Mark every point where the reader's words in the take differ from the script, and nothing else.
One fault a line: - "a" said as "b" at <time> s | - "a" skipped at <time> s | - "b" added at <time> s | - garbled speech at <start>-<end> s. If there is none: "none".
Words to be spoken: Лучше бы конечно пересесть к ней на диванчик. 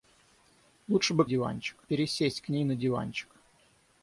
- "конечно" said as "диванчик" at 1.2 s